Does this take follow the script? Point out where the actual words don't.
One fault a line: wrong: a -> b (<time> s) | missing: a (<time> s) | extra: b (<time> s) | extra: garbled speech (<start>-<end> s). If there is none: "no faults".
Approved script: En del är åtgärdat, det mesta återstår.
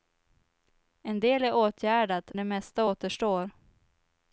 no faults